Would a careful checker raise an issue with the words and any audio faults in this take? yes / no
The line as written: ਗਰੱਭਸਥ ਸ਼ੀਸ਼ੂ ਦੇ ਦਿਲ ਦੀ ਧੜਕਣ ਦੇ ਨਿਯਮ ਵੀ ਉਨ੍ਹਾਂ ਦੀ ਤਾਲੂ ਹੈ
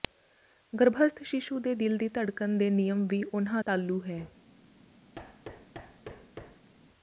yes